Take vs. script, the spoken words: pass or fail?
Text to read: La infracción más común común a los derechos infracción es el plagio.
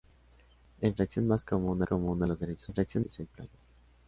pass